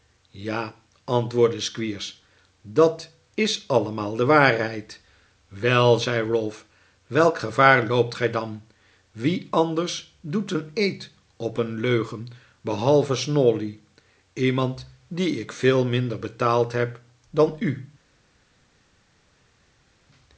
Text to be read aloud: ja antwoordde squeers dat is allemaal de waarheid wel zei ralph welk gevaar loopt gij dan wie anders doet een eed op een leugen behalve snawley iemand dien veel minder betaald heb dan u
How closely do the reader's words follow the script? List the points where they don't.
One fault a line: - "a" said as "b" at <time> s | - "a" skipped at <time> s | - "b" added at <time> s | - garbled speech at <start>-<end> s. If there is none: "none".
- "ik" added at 15.4 s